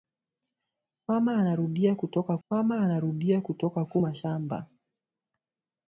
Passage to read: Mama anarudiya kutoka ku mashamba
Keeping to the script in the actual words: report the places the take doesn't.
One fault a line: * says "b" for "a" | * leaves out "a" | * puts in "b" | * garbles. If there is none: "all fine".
* puts in "mama anarudiya kutoka"